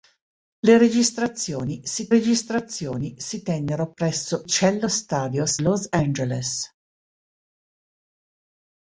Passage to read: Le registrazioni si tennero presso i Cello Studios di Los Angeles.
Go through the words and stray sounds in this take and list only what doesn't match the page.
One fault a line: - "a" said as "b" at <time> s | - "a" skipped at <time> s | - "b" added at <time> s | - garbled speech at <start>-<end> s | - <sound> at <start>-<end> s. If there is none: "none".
- "registrazioni si" added at 2.1 s
- "i" skipped at 4.4 s
- "di" skipped at 5.6 s